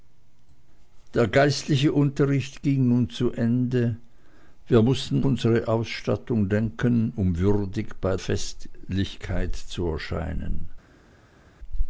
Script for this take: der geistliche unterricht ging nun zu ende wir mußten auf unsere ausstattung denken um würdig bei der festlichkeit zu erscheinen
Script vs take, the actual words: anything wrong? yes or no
yes